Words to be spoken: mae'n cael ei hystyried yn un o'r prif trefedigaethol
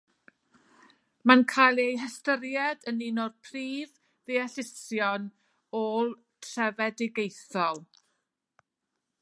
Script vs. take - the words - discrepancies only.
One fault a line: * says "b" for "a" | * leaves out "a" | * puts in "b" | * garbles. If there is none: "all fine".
* puts in "ddeallusion ôl"